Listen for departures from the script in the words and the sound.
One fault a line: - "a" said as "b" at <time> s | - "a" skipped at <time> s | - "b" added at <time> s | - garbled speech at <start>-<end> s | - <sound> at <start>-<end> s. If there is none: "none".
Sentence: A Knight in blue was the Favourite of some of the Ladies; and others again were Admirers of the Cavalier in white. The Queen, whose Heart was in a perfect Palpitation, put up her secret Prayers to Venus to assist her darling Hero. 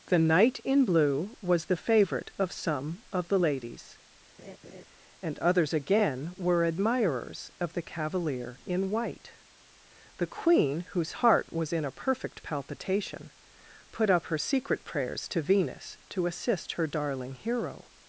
- "A" said as "The" at 0.1 s
- laugh at 4.4-4.8 s